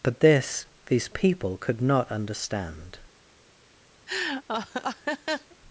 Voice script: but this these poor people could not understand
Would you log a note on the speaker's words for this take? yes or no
yes